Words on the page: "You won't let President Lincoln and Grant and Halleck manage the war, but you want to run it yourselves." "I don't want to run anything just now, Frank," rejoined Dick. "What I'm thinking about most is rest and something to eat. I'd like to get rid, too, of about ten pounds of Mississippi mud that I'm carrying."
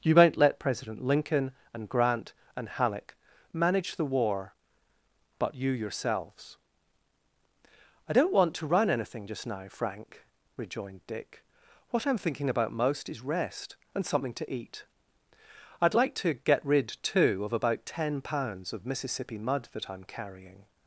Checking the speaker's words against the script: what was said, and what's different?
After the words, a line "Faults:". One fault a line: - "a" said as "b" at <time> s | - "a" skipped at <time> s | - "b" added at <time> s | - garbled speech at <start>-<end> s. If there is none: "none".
"You won't let President Lincoln and Grant and Halleck manage the war, but you yourselves." "I don't want to run anything just now, Frank," rejoined Dick. "What I'm thinking about most is rest and something to eat. I'd like to get rid, too, of about ten pounds of Mississippi mud that I'm carrying."
Faults:
- "want to run it" skipped at 5.7 s